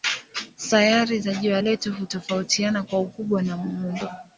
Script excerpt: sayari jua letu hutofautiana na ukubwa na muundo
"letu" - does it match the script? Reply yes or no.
yes